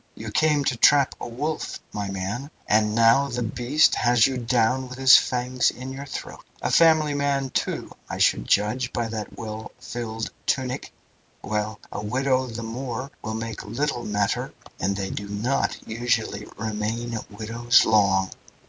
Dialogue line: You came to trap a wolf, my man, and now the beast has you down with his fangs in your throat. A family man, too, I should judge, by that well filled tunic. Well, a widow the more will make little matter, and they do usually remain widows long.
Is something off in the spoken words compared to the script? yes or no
yes